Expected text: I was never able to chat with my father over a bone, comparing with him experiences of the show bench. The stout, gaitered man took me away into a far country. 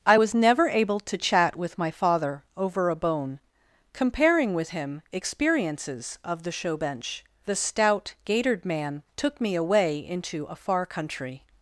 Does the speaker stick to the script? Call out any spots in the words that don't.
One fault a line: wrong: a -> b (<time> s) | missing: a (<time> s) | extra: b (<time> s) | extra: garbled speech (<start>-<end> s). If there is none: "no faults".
no faults